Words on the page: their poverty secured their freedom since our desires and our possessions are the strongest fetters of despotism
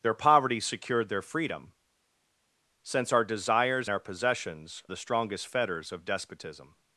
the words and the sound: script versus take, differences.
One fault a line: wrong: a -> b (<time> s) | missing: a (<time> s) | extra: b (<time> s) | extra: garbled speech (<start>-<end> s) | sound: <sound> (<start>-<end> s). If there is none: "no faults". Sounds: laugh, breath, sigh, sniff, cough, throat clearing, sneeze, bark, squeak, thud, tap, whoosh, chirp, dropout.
missing: and (3.9 s)
missing: are (4.8 s)